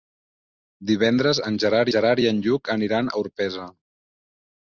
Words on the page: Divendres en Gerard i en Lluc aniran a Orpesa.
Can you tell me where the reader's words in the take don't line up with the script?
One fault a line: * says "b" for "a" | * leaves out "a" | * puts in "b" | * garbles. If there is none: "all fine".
* puts in "Gerard"